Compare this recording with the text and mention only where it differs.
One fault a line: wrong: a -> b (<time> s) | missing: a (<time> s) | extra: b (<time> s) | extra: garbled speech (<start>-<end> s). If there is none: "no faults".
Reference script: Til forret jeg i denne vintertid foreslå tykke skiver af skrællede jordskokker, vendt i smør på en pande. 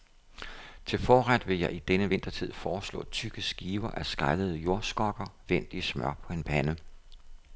extra: vil (1.5 s)